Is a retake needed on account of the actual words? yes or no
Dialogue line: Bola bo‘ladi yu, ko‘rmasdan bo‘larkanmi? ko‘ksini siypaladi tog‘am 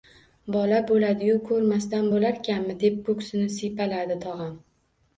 yes